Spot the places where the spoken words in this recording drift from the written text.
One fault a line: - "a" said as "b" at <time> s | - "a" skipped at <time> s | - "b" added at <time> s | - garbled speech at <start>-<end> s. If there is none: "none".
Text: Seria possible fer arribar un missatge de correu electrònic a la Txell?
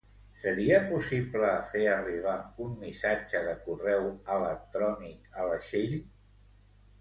none